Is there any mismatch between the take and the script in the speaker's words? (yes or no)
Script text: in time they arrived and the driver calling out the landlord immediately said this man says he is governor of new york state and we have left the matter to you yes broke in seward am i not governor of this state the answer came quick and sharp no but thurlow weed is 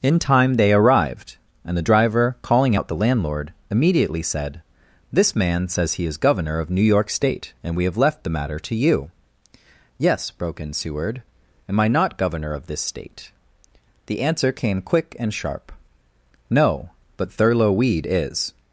no